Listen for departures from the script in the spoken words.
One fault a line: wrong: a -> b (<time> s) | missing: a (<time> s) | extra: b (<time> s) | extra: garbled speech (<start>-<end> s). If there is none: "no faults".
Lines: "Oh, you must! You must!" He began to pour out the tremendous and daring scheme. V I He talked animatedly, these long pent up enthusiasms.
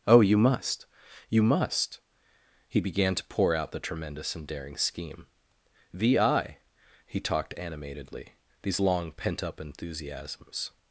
no faults